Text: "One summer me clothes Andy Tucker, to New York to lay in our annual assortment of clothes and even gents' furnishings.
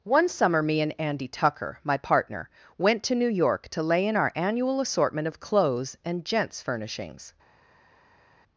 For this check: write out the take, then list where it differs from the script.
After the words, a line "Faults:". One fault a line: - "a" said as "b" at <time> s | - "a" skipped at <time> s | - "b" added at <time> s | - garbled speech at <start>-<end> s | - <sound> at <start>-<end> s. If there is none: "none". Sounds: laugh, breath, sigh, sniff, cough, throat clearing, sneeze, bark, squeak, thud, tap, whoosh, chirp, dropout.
"One summer me and Andy Tucker, my partner, went to New York to lay in our annual assortment of clothes and gents' furnishings.
Faults:
- "clothes" said as "and" at 0.8 s
- "my partner went" added at 1.8 s
- "even" skipped at 6.2 s